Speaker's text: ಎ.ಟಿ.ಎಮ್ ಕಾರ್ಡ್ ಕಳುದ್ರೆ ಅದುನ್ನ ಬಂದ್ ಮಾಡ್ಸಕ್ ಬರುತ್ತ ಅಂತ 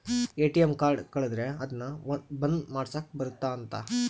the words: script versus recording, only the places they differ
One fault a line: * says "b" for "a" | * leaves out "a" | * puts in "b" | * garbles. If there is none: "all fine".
all fine